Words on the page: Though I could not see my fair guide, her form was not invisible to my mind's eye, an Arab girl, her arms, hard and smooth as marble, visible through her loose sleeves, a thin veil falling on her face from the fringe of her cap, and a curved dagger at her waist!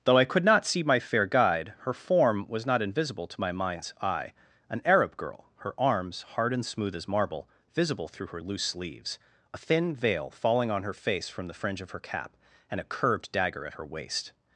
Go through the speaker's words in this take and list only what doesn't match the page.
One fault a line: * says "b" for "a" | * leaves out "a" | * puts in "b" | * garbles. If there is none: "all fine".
all fine